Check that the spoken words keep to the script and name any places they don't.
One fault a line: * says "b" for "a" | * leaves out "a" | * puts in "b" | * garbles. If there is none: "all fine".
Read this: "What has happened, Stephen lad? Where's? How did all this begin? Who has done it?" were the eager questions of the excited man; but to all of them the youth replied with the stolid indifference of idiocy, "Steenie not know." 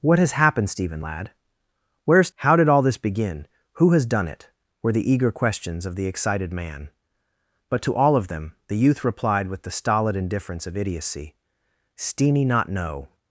all fine